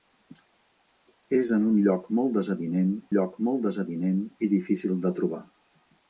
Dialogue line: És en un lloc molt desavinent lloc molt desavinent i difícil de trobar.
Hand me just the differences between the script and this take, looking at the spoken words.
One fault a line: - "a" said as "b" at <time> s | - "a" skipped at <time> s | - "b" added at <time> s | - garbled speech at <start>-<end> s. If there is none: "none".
none